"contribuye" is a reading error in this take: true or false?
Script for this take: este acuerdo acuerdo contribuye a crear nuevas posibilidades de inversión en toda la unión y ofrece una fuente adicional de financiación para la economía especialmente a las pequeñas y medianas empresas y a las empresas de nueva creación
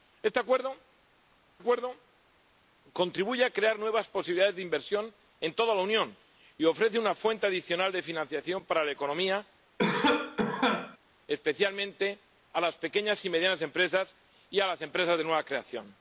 false